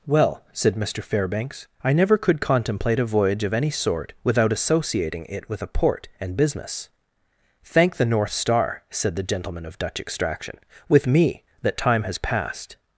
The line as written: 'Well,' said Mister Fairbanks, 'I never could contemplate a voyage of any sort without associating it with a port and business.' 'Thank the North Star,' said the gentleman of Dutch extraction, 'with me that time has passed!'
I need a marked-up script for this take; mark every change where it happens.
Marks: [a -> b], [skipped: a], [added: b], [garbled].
'Well,' said Mister Fairbanks, 'I never could contemplate a voyage of any sort without associating it with a port and business.' 'Thank the North Star,' said the gentleman of Dutch extraction, 'with me that time has passed!'